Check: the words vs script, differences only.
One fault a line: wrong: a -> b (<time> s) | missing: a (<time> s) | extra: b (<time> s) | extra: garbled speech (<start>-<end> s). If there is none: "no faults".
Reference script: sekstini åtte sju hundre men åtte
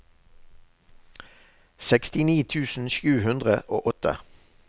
wrong: åtte -> tusen (2.5 s)
wrong: men -> og (3.8 s)